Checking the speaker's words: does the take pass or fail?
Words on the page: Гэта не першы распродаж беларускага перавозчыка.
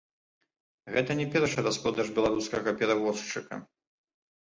pass